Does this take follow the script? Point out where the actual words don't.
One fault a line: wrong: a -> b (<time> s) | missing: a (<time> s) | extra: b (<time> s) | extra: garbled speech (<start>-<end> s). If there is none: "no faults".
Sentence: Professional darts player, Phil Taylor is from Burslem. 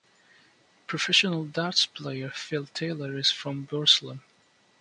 no faults